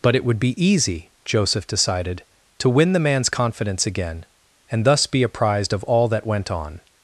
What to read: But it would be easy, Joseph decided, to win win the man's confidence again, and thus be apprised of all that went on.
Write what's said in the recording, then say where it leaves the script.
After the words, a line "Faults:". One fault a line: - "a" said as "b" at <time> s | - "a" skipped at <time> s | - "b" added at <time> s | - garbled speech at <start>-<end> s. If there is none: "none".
But it would be easy, Joseph decided, to win the man's confidence again, and thus be apprised of all that went on.
Faults:
- "win" skipped at 2.9 s